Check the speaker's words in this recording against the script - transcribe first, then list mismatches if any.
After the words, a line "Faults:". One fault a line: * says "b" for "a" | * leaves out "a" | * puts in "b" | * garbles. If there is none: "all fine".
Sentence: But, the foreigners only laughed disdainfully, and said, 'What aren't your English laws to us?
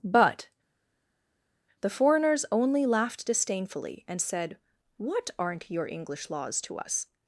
But, the foreigners only laughed disdainfully, and said, 'What aren't your English laws to us?
Faults:
all fine